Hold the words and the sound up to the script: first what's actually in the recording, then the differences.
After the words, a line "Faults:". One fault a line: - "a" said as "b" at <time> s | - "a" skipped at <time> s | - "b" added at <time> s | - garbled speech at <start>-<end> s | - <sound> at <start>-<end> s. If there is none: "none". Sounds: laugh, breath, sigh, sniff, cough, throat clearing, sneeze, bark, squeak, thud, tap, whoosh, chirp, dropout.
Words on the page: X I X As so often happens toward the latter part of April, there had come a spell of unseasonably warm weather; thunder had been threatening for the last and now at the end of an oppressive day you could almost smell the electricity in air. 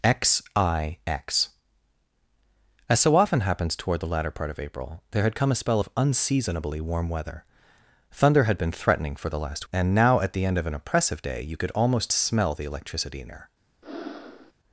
X I X As so often happens toward the latter part of April, there had come a spell of unseasonably warm weather; thunder had been threatening for the last and now at the end of an oppressive day you could almost smell the electricity in air.
Faults:
- breath at 13.8-14.5 s